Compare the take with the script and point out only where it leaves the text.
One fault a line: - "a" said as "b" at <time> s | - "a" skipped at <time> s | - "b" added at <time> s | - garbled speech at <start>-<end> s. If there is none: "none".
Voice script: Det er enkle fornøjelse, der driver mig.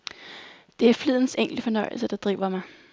- "flidens" added at 0.9 s